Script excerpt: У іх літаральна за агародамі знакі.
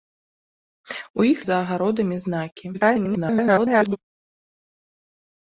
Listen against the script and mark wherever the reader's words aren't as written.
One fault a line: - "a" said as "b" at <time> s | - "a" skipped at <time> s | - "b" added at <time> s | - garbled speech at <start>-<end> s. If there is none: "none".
- "літаральна" skipped at 1.4 s
- garbled speech at 2.7-4.0 s